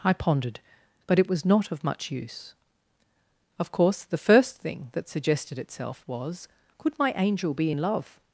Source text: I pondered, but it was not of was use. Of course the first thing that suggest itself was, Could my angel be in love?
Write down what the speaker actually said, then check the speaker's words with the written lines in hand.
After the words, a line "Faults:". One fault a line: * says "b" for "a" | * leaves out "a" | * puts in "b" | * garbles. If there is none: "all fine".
I pondered, but it was not of much use. Of course the first thing that suggested itself was, Could my angel be in love?
Faults:
* says "much" for "was"
* says "suggested" for "suggest"